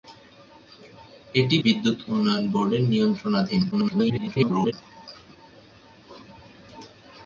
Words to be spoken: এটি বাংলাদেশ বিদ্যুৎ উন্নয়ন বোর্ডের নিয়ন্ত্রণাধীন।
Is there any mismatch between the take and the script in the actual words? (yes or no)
yes